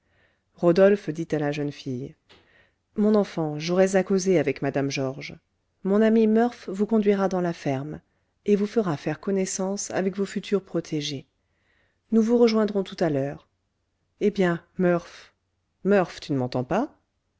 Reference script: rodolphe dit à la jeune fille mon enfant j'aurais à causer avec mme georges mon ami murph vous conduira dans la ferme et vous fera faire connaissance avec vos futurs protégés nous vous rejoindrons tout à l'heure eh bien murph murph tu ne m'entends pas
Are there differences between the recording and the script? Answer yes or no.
no